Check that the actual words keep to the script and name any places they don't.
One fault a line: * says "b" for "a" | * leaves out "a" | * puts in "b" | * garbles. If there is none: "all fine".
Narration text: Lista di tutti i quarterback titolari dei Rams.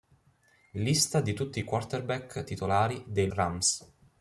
all fine